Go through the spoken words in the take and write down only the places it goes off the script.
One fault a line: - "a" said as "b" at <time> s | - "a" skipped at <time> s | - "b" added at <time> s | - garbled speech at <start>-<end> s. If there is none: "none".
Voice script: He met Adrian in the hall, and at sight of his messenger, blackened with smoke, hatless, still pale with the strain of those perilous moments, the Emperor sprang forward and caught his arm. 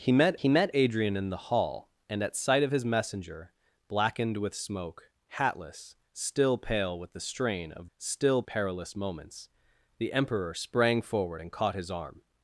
- "he met" added at 0.4 s
- "those" said as "still" at 8.0 s